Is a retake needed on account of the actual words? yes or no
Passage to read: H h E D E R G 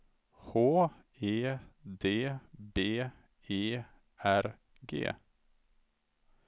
yes